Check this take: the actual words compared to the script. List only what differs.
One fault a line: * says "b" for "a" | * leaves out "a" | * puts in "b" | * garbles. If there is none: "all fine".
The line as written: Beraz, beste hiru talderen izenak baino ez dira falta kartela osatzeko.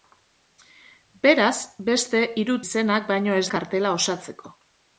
* leaves out "talderen"
* leaves out "dira falta"